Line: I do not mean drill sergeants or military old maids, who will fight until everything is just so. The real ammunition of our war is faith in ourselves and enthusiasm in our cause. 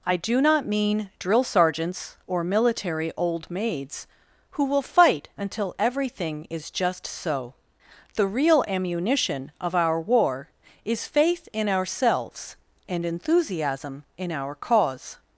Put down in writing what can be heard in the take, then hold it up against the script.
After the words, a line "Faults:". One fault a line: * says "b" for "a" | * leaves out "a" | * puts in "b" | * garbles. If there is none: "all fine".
I do not mean drill sergeants or military old maids, who will fight until everything is just so. The real ammunition of our war is faith in ourselves and enthusiasm in our cause.
Faults:
all fine